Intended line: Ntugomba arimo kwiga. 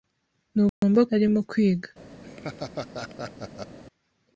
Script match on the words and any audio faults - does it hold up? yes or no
no